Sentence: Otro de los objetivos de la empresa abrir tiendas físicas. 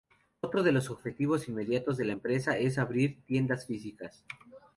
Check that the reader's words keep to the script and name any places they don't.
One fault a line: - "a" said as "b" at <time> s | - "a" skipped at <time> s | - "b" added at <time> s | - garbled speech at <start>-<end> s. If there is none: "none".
- "inmediatos" added at 1.5 s
- "es" added at 2.6 s